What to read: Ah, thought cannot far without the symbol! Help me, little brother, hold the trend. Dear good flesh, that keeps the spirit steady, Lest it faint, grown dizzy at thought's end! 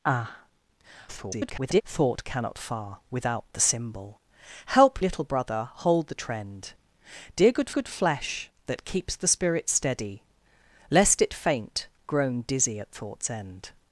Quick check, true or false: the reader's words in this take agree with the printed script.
false